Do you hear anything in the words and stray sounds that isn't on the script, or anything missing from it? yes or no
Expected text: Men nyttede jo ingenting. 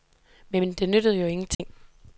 yes